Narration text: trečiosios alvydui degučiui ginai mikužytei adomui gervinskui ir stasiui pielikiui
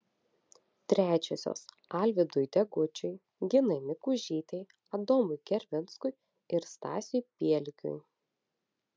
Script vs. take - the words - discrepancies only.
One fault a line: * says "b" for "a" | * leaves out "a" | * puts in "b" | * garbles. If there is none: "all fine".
all fine